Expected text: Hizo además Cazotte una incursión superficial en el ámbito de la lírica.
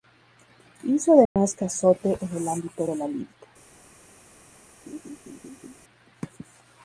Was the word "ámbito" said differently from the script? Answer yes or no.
no